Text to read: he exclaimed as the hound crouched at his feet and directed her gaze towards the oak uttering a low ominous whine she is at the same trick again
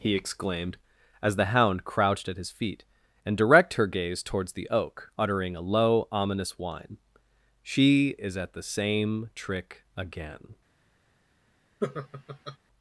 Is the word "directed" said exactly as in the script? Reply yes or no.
no